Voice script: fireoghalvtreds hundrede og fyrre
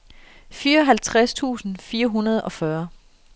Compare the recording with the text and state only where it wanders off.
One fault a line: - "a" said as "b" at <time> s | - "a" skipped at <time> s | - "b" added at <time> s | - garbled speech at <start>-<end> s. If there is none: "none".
- "tusind fire" added at 1.3 s